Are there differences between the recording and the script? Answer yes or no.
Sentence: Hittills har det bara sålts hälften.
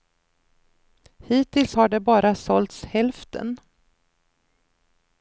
no